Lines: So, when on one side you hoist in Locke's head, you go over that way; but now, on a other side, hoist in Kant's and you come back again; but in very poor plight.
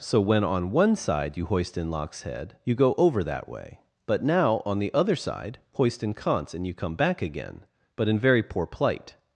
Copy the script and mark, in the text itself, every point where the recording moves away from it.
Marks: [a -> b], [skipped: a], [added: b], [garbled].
So, when on one side you hoist in Locke's head, you go over that way; but now, on [a -> the] other side, hoist in Kant's and you come back again; but in very poor plight.